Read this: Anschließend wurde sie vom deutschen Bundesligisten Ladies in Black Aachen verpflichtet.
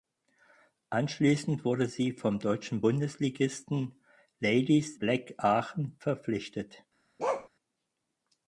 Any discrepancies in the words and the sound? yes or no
yes